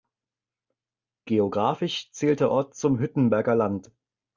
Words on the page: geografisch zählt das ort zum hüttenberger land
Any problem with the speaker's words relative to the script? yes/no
yes